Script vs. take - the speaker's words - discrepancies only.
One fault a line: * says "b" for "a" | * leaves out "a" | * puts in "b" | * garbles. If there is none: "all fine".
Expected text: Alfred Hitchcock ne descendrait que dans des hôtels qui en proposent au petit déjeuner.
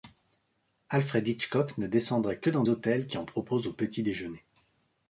* leaves out "des"